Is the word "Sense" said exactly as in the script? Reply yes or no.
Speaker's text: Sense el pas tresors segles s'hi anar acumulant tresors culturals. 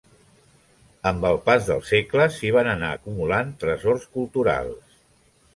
no